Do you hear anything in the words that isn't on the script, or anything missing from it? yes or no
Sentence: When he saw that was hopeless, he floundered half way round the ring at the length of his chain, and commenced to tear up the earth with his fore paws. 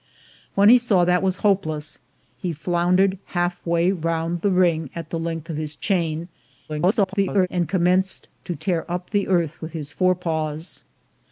yes